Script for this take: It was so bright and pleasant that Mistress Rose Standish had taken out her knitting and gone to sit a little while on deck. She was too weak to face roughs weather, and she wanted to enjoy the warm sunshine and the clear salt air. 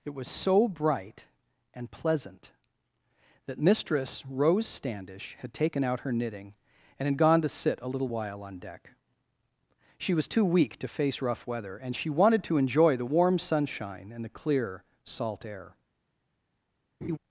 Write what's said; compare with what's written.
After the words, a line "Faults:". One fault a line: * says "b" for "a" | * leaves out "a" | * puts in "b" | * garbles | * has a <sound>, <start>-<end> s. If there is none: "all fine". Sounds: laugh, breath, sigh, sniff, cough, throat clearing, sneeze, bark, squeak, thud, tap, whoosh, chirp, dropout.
It was so bright and pleasant that Mistress Rose Standish had taken out her knitting and had gone to sit a little while on deck. She was too weak to face rough weather, and she wanted to enjoy the warm sunshine and the clear salt air.
Faults:
* puts in "had"
* says "rough" for "roughs"
* has a laugh, 17.0-17.2 s